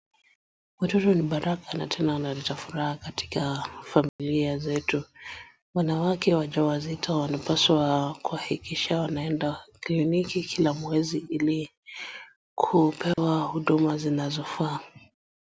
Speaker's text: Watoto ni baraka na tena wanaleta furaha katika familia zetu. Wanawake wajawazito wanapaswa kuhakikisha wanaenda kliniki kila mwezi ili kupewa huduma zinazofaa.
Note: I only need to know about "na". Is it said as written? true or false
true